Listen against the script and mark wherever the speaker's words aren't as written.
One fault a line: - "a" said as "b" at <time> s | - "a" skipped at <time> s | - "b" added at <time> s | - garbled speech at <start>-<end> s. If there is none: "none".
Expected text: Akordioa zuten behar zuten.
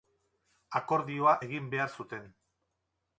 - "zuten" said as "egin" at 1.4 s